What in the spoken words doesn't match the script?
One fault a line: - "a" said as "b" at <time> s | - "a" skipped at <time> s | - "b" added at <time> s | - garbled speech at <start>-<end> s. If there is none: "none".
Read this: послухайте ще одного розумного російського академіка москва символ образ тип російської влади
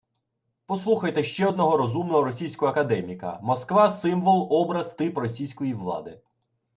none